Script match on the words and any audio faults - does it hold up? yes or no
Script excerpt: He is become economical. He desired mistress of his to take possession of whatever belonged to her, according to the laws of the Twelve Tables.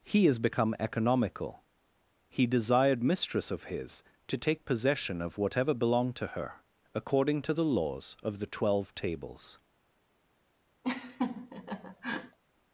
no